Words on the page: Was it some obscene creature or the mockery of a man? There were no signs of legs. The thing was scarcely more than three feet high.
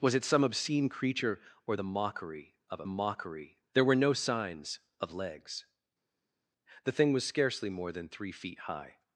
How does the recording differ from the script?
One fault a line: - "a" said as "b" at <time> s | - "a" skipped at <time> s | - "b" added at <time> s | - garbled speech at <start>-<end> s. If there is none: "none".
- "man" said as "mockery" at 2.9 s